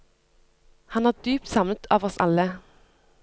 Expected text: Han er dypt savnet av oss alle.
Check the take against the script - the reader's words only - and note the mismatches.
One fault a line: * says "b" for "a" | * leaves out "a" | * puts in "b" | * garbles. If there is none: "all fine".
all fine